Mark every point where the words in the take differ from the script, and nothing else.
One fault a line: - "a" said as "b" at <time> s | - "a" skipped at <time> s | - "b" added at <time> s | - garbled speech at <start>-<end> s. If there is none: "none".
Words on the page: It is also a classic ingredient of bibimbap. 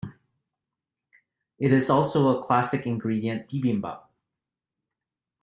- "of" skipped at 3.5 s